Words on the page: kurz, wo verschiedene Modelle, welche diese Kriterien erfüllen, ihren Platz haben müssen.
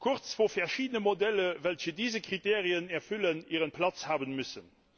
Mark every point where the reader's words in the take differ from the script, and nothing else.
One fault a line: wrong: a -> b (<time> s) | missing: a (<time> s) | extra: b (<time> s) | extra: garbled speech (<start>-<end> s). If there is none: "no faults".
no faults